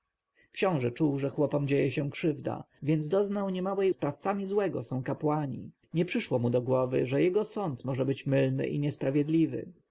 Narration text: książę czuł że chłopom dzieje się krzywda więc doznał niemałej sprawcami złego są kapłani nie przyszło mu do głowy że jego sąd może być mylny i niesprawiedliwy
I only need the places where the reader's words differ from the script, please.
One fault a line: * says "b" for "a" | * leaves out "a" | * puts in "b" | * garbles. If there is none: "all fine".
all fine